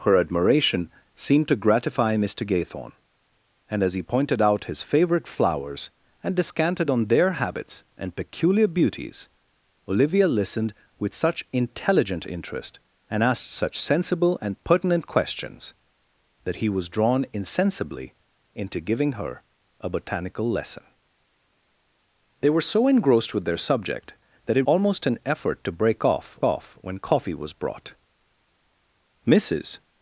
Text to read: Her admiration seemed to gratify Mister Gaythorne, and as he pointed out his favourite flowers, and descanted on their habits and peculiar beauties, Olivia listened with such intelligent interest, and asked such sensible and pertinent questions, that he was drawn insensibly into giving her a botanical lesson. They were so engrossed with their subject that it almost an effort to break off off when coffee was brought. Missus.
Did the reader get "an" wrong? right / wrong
right